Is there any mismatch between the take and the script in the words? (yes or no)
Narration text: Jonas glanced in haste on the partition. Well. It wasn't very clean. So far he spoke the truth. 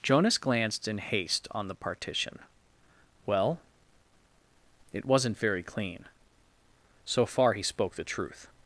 no